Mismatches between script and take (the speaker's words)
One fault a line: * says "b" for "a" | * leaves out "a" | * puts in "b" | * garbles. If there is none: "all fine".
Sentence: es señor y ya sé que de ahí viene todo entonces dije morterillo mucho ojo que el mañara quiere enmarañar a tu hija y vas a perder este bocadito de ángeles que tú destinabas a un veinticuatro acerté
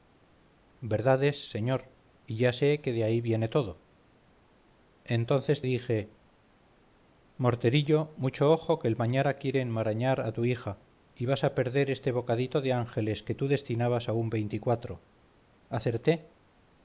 all fine